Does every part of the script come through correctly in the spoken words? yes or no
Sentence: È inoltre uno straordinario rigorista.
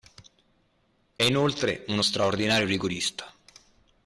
yes